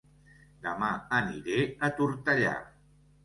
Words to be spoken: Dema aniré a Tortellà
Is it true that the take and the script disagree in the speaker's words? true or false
false